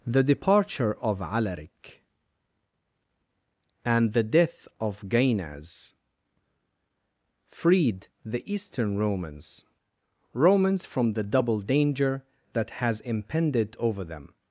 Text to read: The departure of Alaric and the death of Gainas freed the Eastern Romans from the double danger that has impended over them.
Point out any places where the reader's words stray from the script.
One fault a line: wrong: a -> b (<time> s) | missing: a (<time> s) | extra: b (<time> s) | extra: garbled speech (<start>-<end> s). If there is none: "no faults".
extra: Romans (10.3 s)